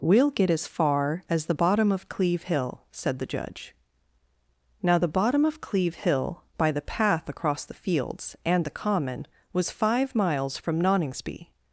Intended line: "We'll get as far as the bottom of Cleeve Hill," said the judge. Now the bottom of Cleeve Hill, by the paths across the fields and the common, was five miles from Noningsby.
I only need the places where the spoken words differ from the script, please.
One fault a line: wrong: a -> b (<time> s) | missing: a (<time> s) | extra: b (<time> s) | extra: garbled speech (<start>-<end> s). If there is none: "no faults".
wrong: paths -> path (6.8 s)